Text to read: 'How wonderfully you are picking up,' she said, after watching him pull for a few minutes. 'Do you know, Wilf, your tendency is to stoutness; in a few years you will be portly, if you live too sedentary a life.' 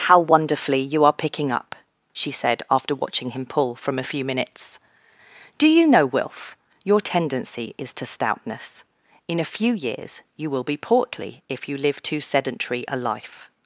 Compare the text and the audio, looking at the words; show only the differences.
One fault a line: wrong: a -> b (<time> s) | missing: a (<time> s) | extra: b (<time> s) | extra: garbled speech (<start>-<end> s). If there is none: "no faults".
wrong: for -> from (3.8 s)